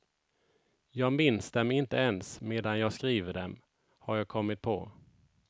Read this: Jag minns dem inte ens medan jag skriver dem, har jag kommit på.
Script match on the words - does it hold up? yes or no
yes